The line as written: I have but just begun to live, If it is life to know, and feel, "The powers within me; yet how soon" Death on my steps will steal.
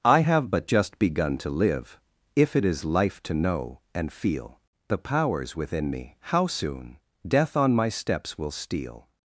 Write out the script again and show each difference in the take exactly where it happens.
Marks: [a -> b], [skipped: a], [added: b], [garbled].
I have but just begun to live, If it is life to know, and feel, "The powers within me; [skipped: yet] how soon" Death on my steps will steal.